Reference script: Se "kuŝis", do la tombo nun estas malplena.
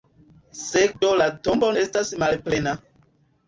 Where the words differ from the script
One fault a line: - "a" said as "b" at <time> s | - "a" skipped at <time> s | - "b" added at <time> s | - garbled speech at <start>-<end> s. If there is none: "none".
- "kuŝis" skipped at 0.8 s
- "nun" skipped at 1.7 s